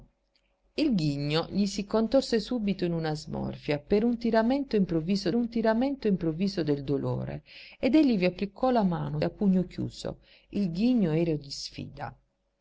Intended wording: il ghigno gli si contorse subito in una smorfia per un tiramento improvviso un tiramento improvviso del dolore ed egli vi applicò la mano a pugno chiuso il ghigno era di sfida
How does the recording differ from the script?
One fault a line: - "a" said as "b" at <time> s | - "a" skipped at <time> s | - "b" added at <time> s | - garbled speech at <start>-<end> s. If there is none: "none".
none